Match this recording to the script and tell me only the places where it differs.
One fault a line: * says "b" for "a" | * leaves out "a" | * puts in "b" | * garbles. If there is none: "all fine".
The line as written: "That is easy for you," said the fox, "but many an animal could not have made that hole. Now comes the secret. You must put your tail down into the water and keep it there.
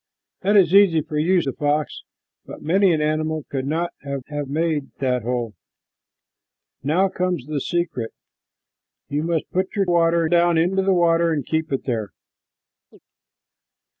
* leaves out "said"
* puts in "have"
* says "water" for "tail"